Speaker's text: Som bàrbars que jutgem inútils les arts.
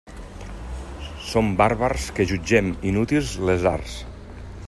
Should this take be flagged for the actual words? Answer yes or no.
no